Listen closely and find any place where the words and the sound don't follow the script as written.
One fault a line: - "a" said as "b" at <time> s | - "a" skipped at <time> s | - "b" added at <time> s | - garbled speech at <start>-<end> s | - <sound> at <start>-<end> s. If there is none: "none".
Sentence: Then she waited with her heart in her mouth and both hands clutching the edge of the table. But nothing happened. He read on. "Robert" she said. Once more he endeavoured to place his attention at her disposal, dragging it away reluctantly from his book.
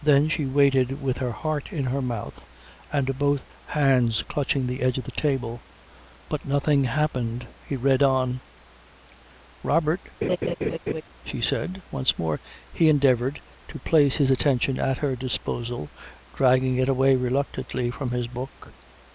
- laugh at 10.2-11.0 s